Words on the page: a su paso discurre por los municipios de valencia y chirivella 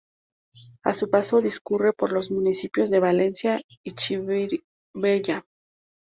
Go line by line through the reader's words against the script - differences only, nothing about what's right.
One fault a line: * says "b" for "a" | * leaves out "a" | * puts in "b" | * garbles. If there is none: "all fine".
all fine